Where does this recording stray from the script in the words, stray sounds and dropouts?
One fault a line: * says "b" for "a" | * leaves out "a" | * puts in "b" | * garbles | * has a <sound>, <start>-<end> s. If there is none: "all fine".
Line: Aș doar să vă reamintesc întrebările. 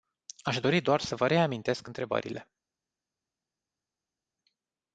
* puts in "dori"